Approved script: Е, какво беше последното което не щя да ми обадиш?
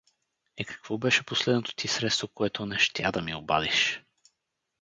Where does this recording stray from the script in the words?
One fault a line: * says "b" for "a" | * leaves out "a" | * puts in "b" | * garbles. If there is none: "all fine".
* puts in "ти средство"